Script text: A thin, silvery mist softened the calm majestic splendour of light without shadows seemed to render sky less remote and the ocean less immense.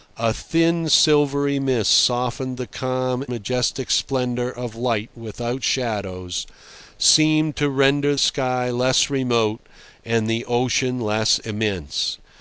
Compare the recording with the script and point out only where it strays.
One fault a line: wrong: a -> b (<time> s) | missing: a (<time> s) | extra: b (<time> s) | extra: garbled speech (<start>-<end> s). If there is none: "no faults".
no faults